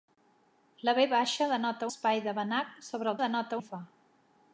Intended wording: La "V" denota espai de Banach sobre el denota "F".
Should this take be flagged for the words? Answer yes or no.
no